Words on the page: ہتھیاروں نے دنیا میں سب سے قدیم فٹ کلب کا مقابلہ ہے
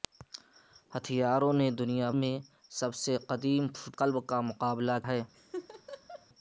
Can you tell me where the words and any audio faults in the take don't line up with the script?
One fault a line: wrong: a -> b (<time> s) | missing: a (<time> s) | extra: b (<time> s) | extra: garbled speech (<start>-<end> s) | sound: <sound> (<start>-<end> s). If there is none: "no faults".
sound: laugh (5.3-6.3 s)